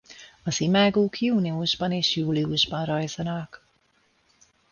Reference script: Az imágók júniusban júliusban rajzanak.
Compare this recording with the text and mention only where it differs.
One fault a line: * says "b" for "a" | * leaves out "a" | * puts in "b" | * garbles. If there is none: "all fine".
* puts in "és"